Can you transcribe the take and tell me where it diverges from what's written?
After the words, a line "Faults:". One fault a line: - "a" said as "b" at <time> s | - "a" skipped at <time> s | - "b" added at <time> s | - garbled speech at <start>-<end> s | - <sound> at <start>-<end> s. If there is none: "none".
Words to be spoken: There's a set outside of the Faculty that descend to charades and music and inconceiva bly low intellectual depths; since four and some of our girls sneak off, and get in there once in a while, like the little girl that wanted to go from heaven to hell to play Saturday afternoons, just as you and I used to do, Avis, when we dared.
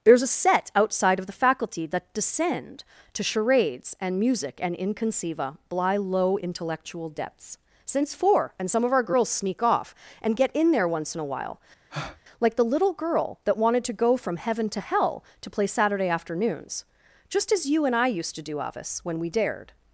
There's a set outside of the Faculty that descend to charades and music and inconceiva bly low intellectual depths; since four and some of our girls sneak off, and get in there once in a while, like the little girl that wanted to go from heaven to hell to play Saturday afternoons, just as you and I used to do, Avis, when we dared.
Faults:
- breath at 11.9-12.2 s